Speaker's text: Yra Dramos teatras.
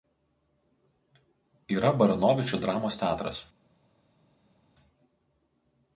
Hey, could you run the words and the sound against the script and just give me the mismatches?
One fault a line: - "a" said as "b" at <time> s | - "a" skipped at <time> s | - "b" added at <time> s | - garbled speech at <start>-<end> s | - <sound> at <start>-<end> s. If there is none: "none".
- "Baranovičių" added at 2.0 s